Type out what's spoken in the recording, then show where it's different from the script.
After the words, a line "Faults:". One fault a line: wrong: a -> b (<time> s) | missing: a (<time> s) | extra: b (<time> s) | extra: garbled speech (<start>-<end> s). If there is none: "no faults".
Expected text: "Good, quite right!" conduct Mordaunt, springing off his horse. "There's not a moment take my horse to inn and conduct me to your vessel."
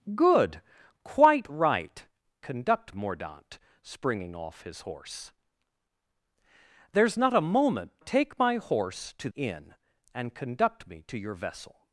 "Good, quite right!" conduct Mordaunt, springing off his horse. "There's not a moment take my horse to inn and conduct me to your vessel."
Faults:
no faults